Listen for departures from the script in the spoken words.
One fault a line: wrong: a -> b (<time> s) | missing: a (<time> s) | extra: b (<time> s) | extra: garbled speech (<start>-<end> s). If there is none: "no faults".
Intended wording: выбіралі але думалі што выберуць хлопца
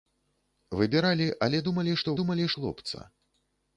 wrong: выберуць -> думалі (2.2 s)